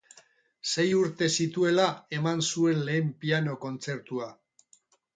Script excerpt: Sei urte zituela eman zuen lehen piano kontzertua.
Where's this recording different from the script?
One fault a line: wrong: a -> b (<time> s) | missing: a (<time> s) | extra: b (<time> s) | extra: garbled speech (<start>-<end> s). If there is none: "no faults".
no faults